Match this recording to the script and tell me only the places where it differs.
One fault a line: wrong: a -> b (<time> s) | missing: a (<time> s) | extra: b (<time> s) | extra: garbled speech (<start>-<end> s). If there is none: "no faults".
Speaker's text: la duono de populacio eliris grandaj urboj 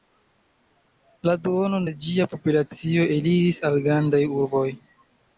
extra: ĝia (2.0 s)
extra: al (3.7 s)